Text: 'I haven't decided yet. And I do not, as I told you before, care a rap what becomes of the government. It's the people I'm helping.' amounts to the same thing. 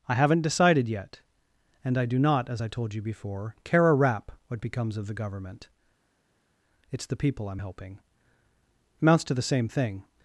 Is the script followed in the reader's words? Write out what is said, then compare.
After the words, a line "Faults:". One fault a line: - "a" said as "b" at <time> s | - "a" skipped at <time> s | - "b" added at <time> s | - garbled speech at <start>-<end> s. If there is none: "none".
'I haven't decided yet. And I do not, as I told you before, care a rap what becomes of the government. It's the people I'm helping.' amounts to the same thing.
Faults:
none